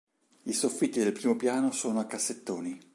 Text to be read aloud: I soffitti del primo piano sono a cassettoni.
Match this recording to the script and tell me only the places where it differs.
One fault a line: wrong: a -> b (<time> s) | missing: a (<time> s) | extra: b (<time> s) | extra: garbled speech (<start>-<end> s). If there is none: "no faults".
no faults